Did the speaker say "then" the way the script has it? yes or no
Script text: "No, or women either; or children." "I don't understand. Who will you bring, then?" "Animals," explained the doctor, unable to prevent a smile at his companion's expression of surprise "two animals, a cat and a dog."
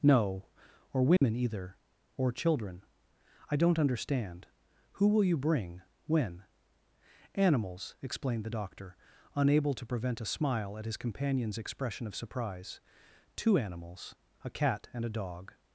no